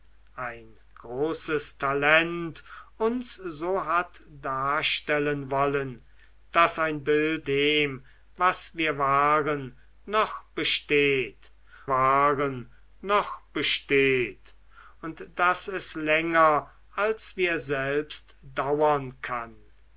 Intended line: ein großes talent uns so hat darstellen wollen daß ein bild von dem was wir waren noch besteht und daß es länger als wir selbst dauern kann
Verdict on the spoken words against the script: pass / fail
fail